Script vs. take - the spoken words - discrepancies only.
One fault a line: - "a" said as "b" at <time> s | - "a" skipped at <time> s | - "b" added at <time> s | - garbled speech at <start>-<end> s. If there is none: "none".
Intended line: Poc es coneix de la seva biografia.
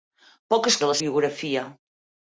- "coneix" skipped at 0.8 s
- "seva" skipped at 1.0 s